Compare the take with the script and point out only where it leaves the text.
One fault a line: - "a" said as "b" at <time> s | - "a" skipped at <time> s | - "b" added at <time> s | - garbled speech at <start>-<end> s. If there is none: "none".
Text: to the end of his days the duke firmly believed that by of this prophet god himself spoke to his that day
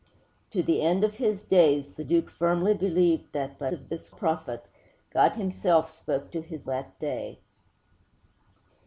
none